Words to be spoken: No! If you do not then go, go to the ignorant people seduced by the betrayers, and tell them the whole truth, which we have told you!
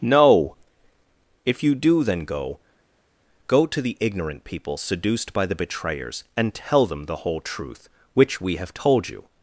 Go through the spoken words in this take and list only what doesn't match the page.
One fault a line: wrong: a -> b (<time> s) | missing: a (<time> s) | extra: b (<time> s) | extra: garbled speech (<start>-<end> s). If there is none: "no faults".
missing: not (2.0 s)